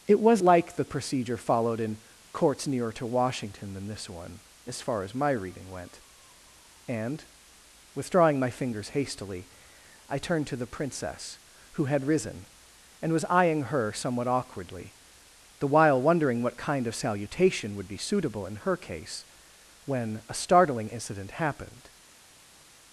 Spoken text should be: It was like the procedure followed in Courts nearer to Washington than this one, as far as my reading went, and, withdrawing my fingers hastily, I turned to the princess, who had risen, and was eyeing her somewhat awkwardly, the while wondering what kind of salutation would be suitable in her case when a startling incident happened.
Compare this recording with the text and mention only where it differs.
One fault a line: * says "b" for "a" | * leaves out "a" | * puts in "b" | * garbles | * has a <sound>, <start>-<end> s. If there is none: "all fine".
all fine